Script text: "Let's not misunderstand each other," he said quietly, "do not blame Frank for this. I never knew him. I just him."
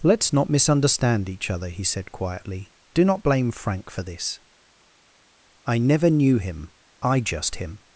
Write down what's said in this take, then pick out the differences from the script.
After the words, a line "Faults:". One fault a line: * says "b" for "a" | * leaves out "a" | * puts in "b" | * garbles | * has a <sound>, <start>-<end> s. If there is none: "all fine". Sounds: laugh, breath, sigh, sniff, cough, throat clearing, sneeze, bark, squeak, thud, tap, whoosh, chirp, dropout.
"Let's not misunderstand each other," he said quietly, "do not blame Frank for this. I never knew him. I just him."
Faults:
all fine